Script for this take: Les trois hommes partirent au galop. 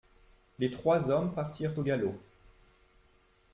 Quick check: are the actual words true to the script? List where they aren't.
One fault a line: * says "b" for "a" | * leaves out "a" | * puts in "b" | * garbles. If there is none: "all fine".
all fine